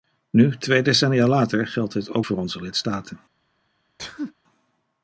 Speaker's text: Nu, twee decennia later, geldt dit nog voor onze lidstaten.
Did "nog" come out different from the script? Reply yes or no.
yes